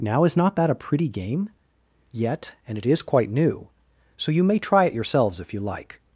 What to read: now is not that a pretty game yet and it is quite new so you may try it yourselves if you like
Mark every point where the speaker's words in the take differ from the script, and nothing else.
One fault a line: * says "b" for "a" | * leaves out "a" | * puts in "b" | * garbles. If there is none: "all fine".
all fine